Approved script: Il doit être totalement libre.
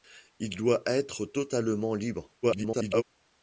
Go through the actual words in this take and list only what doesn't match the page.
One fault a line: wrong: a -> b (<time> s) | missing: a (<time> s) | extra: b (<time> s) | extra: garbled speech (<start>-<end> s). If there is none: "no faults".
extra: garbled speech (2.4-3.0 s)